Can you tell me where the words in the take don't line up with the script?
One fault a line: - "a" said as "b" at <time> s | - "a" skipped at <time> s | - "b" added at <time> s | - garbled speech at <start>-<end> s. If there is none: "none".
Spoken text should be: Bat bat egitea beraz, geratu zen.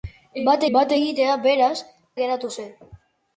none